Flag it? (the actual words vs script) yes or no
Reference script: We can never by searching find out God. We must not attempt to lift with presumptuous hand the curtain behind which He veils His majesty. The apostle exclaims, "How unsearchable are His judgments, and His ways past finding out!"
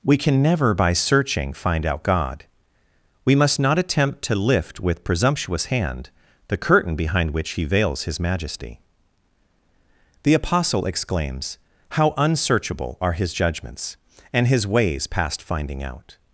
no